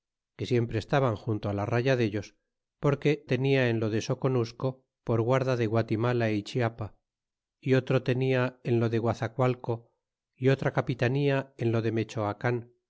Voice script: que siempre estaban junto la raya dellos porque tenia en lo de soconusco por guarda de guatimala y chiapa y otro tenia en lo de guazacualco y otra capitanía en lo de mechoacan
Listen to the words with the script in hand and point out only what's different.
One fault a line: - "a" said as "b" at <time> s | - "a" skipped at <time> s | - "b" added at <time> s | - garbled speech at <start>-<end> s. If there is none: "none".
none